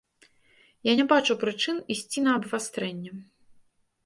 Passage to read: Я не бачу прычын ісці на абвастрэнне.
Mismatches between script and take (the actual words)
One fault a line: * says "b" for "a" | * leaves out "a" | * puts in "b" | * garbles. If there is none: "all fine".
all fine